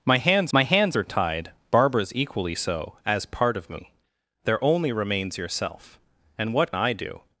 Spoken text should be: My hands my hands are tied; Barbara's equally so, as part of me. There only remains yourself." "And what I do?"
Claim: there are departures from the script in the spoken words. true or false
false